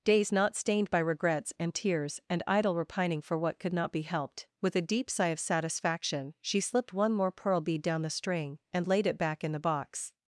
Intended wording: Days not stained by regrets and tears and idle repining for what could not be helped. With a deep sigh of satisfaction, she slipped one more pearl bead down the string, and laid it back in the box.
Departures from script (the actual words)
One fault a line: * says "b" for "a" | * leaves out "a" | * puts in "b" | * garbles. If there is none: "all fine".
all fine